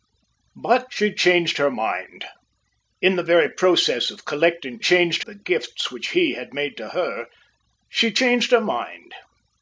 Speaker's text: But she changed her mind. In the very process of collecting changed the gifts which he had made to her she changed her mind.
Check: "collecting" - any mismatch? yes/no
no